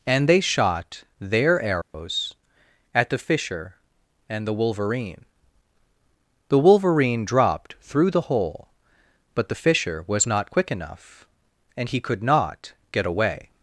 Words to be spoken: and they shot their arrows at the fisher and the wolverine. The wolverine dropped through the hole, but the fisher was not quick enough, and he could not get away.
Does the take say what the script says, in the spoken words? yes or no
yes